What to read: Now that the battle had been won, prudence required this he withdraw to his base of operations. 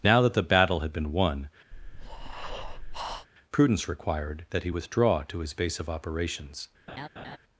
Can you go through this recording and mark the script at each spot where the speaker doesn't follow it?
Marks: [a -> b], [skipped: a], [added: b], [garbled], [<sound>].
Now that the battle had been won, [breath] prudence required [this -> that] he withdraw to his base of operations. [laugh]